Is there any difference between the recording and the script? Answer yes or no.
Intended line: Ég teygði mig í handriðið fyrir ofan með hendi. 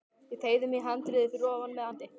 no